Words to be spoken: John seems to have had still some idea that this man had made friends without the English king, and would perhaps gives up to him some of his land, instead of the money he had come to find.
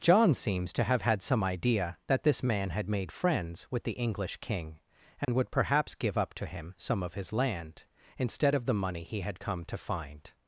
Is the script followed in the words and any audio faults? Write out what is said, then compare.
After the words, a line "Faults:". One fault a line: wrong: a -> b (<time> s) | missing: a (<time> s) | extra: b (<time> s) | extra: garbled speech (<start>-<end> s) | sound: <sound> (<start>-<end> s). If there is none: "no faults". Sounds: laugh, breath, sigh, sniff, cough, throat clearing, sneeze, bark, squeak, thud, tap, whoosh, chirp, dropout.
John seems to have had some idea that this man had made friends with the English king, and would perhaps give up to him some of his land, instead of the money he had come to find.
Faults:
missing: still (1.2 s)
wrong: without -> with (3.7 s)
sound: dropout (5.2-5.3 s)
wrong: gives -> give (5.9 s)